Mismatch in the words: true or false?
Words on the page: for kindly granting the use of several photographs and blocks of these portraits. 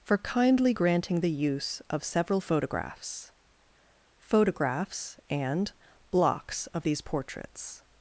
true